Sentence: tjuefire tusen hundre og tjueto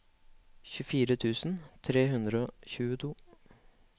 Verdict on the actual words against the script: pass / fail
fail